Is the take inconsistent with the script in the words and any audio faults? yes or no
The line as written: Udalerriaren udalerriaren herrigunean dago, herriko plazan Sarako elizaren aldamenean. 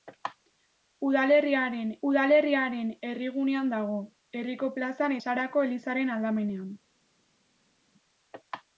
no